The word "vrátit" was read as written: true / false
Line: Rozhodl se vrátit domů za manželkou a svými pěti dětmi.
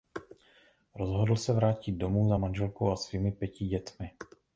true